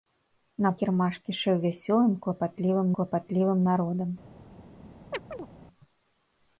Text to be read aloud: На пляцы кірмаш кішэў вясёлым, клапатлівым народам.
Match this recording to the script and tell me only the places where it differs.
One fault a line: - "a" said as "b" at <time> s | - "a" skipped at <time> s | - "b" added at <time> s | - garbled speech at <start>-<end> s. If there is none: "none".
- "пляцы" skipped at 0.7 s
- "клапатлівым" added at 3.0 s